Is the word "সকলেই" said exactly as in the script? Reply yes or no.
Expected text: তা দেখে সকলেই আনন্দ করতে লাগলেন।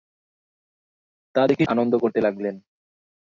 no